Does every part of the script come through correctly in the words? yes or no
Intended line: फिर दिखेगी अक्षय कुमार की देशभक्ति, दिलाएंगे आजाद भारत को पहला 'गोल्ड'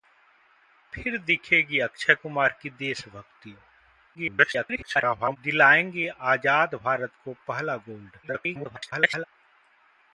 no